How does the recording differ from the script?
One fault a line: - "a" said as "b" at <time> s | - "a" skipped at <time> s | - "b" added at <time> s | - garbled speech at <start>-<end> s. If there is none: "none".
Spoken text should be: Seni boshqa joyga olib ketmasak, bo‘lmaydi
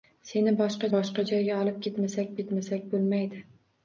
- "boshqa" added at 0.9 s
- "ketmasak" added at 2.4 s